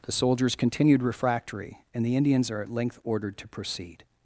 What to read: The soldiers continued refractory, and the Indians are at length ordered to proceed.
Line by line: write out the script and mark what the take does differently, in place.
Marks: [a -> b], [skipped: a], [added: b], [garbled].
The soldiers continued refractory, and the Indians are at length ordered to proceed.